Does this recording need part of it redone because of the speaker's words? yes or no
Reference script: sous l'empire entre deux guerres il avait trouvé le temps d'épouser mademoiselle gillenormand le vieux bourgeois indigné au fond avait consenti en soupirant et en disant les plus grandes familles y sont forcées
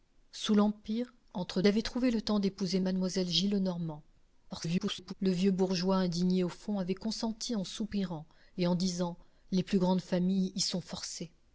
yes